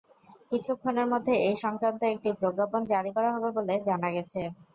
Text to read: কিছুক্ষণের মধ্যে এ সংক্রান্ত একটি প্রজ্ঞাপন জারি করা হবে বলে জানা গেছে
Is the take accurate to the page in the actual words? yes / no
yes